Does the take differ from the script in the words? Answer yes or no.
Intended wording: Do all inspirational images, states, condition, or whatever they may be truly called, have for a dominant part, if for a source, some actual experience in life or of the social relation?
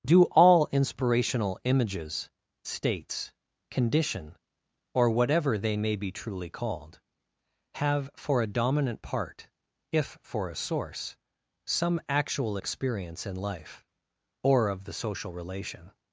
no